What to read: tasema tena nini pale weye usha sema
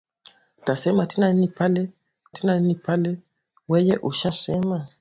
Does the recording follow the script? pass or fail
fail